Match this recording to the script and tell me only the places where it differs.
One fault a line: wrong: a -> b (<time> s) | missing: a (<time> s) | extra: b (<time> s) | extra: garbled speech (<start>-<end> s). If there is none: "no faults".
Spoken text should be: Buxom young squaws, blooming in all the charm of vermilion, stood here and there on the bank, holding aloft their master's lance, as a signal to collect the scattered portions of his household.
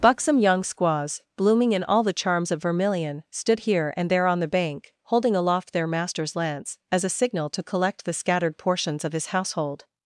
wrong: charm -> charms (2.1 s)